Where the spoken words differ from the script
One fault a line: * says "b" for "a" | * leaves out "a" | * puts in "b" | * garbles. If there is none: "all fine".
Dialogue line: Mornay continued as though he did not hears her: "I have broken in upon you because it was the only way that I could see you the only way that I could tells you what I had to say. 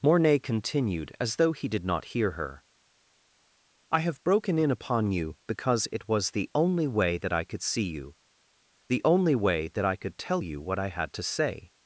* says "hear" for "hears"
* says "tell" for "tells"